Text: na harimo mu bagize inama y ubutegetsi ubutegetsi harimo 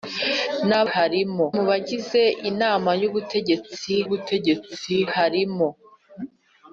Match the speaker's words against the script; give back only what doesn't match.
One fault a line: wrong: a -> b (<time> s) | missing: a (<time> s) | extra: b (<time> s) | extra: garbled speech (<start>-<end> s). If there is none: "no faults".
no faults